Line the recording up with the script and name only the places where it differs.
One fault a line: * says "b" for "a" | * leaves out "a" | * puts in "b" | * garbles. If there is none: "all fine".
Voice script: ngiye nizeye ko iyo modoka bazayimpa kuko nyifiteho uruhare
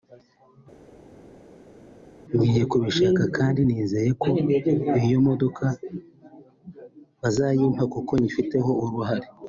* puts in "kubishaka kandi"